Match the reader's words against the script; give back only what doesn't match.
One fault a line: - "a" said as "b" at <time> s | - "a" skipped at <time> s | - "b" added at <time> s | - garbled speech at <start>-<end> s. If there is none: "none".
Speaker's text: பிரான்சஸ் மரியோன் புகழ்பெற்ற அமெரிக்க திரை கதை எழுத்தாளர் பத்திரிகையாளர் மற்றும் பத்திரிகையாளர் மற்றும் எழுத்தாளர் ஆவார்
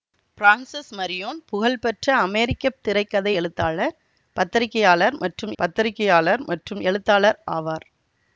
none